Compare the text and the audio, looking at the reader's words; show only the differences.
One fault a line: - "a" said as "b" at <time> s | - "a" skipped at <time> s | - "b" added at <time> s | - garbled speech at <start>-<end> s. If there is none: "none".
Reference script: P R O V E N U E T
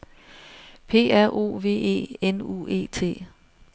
none